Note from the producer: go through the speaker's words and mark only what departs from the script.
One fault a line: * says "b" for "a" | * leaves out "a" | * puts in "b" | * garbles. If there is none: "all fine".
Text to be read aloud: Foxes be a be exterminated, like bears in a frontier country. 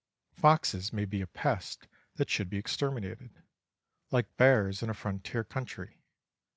* puts in "may"
* puts in "pest that should"